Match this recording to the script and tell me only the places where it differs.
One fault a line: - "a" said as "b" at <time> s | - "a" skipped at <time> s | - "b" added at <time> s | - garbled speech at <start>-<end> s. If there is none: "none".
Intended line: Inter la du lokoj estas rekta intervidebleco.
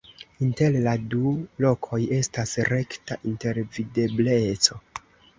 none